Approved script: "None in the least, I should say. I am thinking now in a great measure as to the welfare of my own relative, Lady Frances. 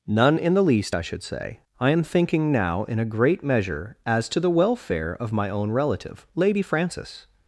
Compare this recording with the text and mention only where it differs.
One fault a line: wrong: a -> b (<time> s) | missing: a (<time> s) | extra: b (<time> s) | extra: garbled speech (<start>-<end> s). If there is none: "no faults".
no faults